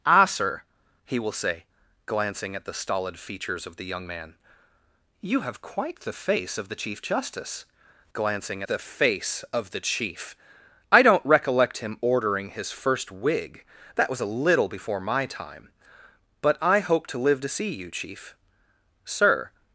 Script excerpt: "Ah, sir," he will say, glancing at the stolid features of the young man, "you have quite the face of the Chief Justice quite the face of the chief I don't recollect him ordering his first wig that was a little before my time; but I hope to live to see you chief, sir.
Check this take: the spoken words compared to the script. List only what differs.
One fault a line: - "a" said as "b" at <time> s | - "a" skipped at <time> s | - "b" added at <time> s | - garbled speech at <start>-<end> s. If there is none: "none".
- "quite" said as "glancing" at 8.1 s